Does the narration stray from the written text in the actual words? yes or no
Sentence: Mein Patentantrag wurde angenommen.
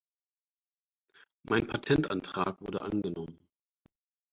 no